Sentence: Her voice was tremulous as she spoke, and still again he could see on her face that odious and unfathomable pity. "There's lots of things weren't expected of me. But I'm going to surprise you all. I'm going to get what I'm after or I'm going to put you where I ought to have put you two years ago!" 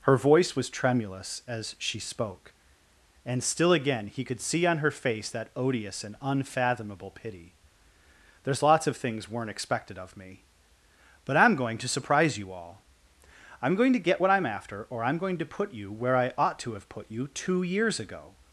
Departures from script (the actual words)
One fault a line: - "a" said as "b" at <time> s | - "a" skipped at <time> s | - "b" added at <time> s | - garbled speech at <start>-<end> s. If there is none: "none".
none